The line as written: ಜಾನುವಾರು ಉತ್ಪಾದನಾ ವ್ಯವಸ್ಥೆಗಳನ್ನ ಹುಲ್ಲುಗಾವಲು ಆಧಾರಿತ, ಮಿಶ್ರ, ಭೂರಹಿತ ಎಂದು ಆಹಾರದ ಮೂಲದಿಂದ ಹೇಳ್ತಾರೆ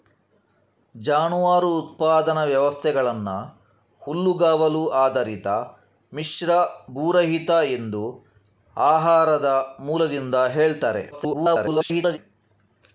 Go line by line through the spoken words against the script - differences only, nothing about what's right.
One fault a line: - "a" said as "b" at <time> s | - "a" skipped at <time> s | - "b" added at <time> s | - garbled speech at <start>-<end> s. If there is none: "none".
- garbled speech at 11.1-12.2 s